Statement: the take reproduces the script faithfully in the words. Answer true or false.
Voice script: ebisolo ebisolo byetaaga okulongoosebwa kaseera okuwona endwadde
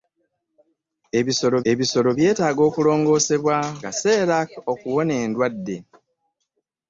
true